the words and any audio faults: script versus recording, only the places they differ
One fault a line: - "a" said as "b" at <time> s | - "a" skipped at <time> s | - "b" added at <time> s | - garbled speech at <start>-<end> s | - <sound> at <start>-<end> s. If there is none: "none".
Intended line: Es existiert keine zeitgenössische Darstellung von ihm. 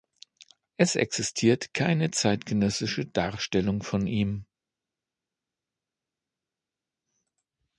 none